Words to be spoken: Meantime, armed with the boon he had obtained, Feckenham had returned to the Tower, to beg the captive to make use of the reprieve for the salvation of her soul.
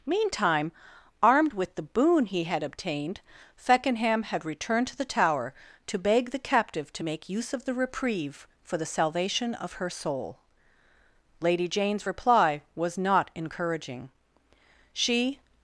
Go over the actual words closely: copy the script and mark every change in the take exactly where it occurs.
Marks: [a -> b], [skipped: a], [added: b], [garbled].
Meantime, armed with the boon he had obtained, Feckenham had returned to the Tower, to beg the captive to make use of the reprieve for the salvation of her soul. [added: Lady Jane's reply was not encouraging She]